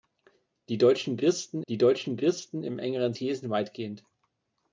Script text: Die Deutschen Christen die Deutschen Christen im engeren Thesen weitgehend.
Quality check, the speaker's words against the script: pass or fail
pass